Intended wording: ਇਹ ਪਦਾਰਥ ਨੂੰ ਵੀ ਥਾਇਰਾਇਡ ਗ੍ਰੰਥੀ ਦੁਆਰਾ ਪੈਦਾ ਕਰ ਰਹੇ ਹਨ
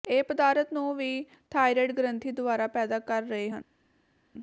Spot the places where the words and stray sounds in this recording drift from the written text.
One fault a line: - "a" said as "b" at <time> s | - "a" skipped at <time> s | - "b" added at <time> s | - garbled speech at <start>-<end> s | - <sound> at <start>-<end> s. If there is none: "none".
none